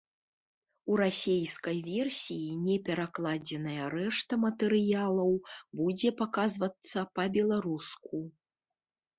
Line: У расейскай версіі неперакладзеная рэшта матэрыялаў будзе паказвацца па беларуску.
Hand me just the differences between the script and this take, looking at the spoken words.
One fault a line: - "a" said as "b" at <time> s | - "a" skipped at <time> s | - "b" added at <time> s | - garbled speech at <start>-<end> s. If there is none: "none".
none